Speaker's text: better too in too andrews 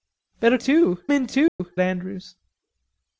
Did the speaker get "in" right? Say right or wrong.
right